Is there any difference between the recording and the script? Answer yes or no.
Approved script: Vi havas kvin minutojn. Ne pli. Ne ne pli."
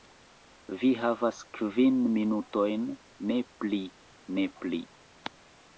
yes